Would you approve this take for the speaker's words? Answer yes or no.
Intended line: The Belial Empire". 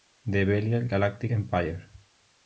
no